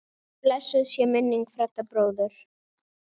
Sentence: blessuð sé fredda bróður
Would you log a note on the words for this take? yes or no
yes